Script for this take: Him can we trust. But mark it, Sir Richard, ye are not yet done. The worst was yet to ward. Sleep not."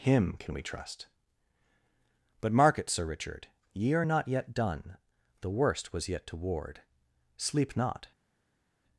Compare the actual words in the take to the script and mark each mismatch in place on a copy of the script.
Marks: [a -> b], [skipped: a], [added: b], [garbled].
Him can we trust. But mark it, Sir Richard, ye are not yet done. The worst was yet to ward. Sleep not."